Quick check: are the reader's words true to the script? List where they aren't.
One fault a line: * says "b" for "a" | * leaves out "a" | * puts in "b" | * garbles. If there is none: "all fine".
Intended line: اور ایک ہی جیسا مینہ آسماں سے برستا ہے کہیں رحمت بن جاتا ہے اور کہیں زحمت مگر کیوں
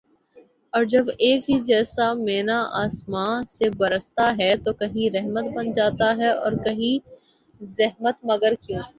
* puts in "جب"
* puts in "تو"